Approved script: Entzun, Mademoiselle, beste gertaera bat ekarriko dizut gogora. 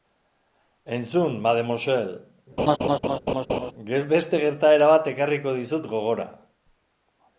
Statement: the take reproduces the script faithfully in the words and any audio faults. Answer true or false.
false